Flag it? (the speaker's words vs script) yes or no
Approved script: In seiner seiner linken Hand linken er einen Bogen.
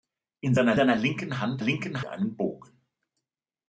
no